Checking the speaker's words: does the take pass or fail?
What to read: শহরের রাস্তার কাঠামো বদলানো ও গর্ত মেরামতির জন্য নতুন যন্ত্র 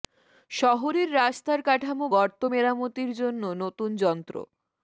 fail